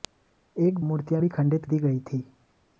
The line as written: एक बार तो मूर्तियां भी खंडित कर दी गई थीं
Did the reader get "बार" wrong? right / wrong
wrong